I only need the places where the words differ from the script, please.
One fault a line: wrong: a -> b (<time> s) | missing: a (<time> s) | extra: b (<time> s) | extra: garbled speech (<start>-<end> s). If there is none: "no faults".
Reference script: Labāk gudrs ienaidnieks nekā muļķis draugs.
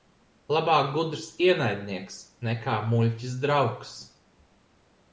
no faults